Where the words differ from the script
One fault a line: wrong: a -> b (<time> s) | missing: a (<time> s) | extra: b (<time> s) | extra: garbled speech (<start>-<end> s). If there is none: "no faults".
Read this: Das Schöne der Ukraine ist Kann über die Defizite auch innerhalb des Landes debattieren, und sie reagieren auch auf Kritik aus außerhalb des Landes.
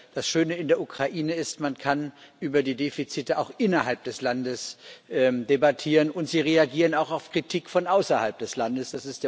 extra: in (0.6 s)
extra: Man (1.6 s)
wrong: aus -> von (7.7 s)